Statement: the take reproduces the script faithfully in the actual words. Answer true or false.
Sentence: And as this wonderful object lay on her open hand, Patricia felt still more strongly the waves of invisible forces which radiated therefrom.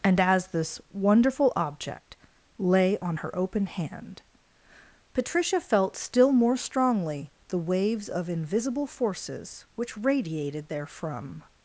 true